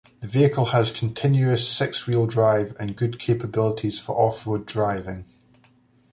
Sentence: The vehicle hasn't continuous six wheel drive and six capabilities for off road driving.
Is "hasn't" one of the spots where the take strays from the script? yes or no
yes